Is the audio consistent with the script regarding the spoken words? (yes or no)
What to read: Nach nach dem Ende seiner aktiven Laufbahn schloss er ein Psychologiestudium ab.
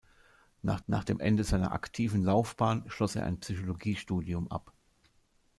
yes